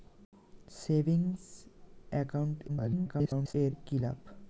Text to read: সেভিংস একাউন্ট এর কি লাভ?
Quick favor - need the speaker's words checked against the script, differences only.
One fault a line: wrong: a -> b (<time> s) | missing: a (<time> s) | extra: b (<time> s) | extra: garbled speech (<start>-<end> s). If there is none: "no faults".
extra: garbled speech (2.7-3.5 s)